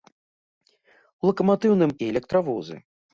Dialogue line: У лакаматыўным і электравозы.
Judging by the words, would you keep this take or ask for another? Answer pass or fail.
pass